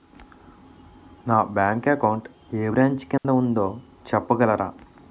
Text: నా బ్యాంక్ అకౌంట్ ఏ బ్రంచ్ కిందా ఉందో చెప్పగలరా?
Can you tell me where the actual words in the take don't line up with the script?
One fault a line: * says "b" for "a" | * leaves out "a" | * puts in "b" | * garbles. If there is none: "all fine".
all fine